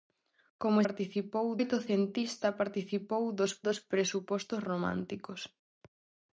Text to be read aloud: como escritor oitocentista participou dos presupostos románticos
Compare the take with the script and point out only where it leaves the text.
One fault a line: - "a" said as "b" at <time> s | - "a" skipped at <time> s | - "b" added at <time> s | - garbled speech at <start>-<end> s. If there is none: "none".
- "escritor" said as "participou" at 0.8 s
- "dos" added at 3.7 s